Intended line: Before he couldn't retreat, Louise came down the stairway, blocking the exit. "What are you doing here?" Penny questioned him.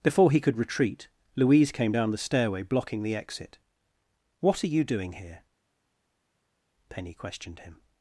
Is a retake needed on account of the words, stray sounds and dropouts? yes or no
yes